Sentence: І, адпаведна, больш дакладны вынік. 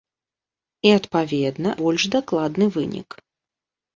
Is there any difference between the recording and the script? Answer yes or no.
no